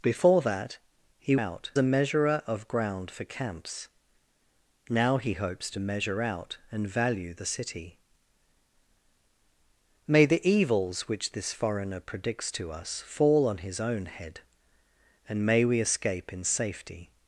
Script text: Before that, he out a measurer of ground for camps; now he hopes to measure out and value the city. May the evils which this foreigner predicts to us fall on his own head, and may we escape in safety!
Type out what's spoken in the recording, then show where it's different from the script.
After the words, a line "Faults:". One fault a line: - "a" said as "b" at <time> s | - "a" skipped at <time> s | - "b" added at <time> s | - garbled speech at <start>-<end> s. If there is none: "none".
Before that, he out a measurer of ground for camps; now he hopes to measure out and value the city. May the evils which this foreigner predicts to us fall on his own head, and may we escape in safety!
Faults:
none